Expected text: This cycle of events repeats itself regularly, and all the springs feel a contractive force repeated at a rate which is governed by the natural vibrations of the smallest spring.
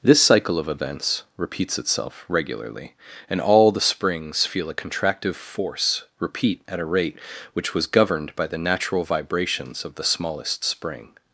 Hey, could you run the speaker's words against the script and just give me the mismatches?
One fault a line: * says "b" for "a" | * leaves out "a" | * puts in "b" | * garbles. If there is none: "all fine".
* says "repeat" for "repeated"
* says "was" for "is"